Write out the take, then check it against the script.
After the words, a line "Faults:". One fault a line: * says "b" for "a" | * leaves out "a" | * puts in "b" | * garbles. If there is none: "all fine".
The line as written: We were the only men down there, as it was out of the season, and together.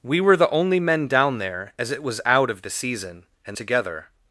We were the only men down there, as it was out of the season, and together.
Faults:
all fine